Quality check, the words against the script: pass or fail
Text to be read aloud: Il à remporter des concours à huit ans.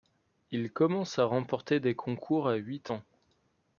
fail